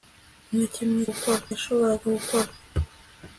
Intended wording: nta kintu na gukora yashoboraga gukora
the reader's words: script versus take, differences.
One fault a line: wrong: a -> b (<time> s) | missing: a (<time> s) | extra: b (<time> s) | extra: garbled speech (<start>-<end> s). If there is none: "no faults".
no faults